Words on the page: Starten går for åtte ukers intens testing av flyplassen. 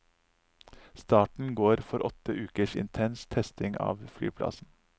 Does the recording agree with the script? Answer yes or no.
yes